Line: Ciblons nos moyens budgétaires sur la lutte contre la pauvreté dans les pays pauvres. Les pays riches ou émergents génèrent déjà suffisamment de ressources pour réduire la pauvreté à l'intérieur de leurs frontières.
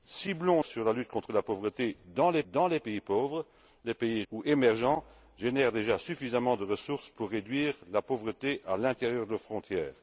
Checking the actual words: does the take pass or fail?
fail